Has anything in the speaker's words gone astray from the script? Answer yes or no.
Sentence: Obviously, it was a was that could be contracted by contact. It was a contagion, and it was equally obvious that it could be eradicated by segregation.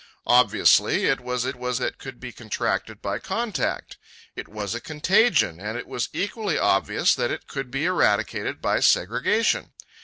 no